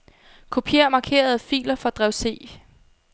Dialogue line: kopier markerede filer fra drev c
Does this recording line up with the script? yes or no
yes